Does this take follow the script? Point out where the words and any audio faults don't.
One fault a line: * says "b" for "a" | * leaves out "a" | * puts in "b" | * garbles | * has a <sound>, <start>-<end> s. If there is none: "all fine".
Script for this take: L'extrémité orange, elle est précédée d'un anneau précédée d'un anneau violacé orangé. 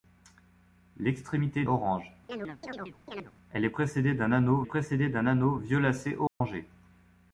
* has a chirp, 2.3-3.3 s
* has a dropout, 6.3-6.4 s